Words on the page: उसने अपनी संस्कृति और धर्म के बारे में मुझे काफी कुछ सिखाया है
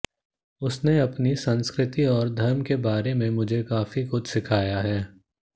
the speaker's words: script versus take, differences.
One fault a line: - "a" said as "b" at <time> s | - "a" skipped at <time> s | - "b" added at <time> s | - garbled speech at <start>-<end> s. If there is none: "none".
none